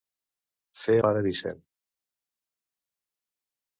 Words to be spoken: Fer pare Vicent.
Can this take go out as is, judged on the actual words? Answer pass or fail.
pass